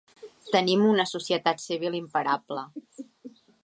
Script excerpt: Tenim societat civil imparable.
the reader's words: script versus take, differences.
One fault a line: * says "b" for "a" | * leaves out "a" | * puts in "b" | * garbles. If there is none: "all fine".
* puts in "una"